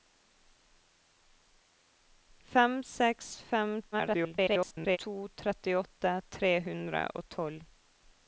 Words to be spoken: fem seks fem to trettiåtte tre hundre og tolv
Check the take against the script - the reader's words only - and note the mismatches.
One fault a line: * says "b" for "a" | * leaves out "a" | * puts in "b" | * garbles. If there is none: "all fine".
* garbles